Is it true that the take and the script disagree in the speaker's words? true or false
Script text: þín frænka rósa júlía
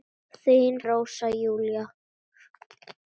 true